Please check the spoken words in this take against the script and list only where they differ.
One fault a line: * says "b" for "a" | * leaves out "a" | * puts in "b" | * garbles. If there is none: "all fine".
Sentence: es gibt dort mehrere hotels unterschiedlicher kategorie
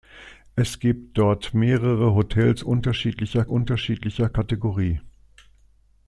* puts in "unterschiedlicher"